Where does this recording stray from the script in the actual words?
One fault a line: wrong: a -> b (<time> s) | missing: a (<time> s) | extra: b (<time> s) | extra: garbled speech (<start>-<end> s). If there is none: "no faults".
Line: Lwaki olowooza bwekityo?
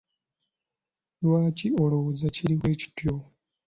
extra: kiri (2.3 s)